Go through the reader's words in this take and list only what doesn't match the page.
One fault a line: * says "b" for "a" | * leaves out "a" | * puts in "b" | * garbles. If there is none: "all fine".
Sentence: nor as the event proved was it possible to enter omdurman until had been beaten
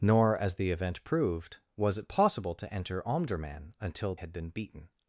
all fine